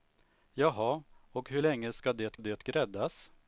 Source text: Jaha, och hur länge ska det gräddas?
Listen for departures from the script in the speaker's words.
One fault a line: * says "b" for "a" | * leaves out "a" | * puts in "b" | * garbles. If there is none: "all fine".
* puts in "det"